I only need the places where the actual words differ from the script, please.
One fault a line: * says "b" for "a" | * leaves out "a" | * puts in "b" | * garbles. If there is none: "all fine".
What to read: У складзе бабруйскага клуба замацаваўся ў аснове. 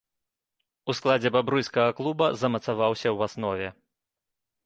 all fine